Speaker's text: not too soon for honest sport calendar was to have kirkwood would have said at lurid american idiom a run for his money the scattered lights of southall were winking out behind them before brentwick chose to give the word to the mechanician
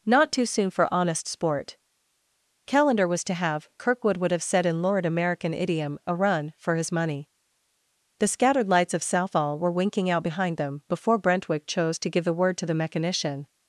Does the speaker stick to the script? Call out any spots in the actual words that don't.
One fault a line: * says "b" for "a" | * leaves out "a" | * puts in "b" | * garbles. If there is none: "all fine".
* says "in" for "at"